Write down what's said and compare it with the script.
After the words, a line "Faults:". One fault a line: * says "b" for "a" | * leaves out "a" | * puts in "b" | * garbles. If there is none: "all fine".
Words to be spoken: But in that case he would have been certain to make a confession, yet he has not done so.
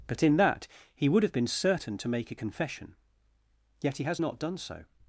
But in that he would have been certain to make a confession, yet he has not done so.
Faults:
* leaves out "case"